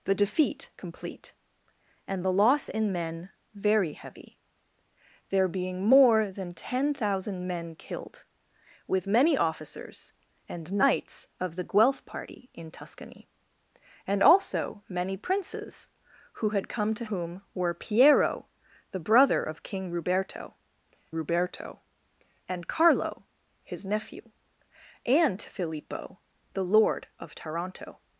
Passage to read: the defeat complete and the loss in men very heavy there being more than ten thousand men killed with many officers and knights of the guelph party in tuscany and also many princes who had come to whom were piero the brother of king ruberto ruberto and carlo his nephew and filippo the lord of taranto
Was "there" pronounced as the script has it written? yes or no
yes